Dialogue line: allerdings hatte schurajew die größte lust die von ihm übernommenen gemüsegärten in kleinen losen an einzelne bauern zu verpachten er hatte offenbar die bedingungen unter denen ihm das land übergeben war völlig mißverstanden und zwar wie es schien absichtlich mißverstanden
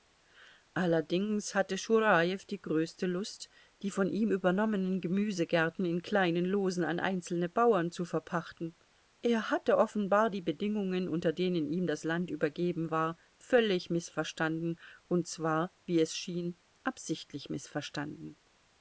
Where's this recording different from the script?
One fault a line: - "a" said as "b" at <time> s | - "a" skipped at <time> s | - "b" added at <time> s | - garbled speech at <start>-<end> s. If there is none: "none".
none